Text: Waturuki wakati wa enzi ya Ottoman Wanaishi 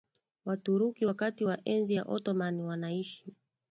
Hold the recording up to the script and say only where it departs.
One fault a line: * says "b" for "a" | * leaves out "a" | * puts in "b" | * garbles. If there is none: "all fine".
all fine